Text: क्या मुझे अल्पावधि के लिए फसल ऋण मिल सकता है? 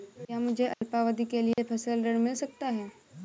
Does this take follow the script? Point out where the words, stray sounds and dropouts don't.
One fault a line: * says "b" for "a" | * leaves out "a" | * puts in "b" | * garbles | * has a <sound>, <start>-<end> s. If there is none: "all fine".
* has a dropout, 0.7-0.8 s
* has a dropout, 1.5-1.6 s